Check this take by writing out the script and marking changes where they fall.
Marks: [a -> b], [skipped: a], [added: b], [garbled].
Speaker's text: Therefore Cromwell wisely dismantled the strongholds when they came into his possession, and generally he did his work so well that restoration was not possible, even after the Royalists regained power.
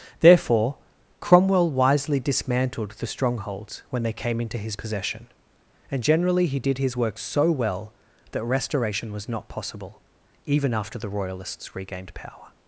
Therefore Cromwell wisely dismantled the strongholds when they came into his possession, and generally he did his work so well that restoration was not possible, even after the Royalists regained power.